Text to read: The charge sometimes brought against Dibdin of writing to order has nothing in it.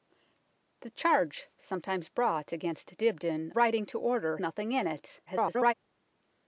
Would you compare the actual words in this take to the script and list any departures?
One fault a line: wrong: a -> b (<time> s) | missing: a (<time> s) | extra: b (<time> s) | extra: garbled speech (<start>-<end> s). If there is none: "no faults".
missing: of (3.5 s)
missing: has (4.4 s)
extra: garbled speech (5.3-5.7 s)